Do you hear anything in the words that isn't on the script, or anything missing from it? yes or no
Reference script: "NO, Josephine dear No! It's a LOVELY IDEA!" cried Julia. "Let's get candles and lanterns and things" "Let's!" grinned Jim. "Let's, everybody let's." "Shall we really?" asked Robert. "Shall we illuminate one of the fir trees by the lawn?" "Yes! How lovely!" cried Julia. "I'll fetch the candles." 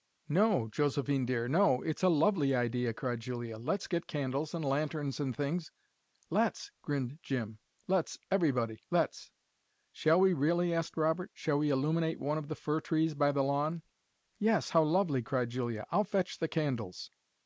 no